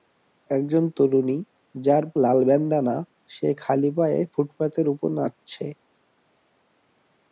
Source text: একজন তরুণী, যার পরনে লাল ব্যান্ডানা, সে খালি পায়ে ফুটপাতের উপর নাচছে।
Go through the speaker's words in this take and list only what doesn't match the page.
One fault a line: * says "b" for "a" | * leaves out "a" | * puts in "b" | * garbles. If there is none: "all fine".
* leaves out "পরনে"